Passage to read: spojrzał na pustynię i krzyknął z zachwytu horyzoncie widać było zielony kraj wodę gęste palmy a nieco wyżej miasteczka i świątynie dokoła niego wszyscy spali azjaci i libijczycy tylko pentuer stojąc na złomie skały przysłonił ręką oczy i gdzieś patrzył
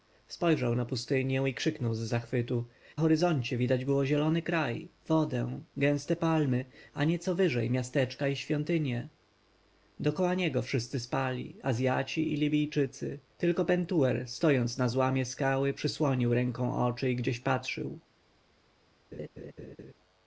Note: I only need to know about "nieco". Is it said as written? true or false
true